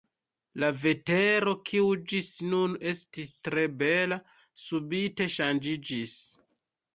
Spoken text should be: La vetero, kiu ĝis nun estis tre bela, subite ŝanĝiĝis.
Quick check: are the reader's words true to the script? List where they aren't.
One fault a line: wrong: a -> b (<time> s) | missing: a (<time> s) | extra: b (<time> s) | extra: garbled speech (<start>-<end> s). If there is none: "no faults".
no faults